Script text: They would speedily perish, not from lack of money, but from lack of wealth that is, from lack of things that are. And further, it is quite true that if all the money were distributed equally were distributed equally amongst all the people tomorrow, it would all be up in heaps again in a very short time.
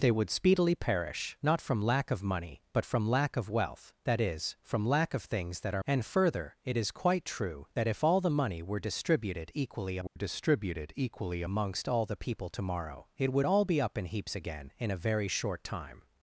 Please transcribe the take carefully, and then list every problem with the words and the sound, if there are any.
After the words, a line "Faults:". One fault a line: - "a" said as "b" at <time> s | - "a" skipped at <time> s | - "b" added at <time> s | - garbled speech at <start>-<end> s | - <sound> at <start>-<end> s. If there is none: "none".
They would speedily perish, not from lack of money, but from lack of wealth that is, from lack of things that are. And further, it is quite true that if all the money were distributed equally were distributed equally amongst all the people tomorrow, it would all be up in heaps again in a very short time.
Faults:
- dropout at 10.1-10.2 s